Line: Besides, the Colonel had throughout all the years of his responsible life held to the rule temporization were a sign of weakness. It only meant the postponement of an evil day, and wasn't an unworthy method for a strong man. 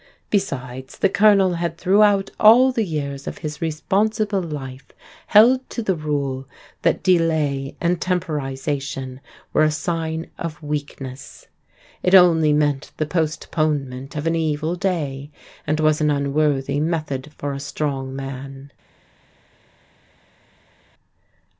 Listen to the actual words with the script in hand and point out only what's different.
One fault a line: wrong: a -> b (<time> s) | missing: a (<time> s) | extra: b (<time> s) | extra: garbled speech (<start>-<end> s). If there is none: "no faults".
extra: that delay and (6.8 s)
wrong: wasn't -> was (15.8 s)